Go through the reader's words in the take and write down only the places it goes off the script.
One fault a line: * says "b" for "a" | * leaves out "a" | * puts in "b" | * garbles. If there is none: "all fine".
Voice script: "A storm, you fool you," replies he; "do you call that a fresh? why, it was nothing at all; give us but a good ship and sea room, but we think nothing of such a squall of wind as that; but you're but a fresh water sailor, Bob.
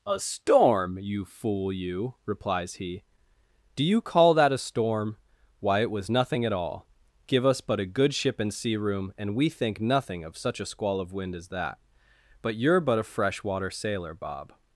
* says "storm" for "fresh"
* says "and" for "but"